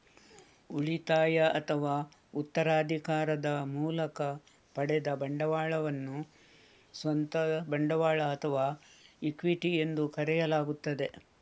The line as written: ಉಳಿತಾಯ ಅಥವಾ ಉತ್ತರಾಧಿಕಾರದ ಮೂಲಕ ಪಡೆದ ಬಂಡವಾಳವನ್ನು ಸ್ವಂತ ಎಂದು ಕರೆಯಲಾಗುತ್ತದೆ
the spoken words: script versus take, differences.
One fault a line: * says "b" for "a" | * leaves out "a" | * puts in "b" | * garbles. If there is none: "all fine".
* puts in "ಬಂಡವಾಳ ಅಥವಾ ಇಕ್ವಿಟಿ"